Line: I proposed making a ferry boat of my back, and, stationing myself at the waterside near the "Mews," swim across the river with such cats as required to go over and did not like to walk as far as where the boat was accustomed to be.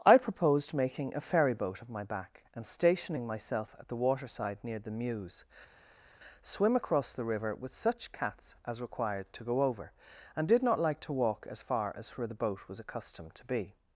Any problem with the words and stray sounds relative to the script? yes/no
no